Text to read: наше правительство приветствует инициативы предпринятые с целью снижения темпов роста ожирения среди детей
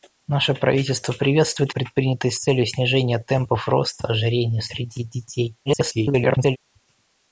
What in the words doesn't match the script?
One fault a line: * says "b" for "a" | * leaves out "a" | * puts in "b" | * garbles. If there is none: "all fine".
* leaves out "инициативы"
* garbles